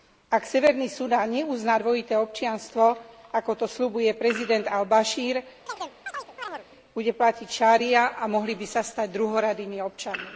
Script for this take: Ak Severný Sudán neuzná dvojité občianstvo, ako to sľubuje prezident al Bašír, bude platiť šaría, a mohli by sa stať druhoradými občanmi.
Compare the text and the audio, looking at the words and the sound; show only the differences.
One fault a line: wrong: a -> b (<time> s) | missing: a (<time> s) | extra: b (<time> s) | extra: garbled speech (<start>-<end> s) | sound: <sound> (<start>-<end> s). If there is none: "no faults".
sound: chirp (5.7-6.7 s)